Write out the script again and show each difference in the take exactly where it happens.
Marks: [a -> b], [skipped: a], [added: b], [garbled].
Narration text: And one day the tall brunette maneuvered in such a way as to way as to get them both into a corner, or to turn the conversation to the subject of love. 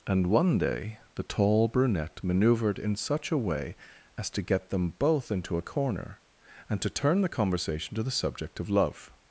And one day the tall brunette maneuvered in such a way as to [skipped: way as to] get them both into a corner, [or -> and] to turn the conversation to the subject of love.